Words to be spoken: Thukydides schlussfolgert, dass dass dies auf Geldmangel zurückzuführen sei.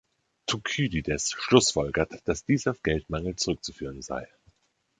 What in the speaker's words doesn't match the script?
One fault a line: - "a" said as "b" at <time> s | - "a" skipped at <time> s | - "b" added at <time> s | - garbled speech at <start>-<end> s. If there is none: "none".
- "dass" skipped at 2.4 s